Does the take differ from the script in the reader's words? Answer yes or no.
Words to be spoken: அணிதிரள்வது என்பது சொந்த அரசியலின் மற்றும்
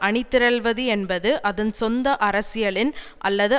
yes